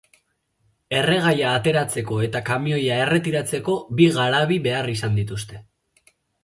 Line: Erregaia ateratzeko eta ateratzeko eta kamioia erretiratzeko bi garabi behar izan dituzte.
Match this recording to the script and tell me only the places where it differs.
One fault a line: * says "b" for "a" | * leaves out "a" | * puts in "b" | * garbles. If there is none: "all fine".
* leaves out "ateratzeko eta"